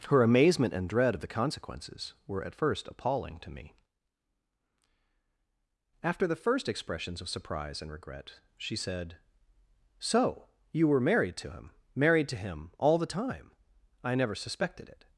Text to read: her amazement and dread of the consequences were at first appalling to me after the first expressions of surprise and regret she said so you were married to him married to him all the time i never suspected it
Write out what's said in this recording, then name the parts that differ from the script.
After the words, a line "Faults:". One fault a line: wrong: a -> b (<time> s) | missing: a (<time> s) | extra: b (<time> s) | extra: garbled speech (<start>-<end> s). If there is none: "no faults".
her amazement and dread of the consequences were at first appalling to me after the first expressions of surprise and regret she said so you were married to him married to him all the time i never suspected it
Faults:
no faults